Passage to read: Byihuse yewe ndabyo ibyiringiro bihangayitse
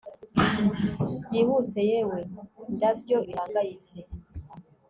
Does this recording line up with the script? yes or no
no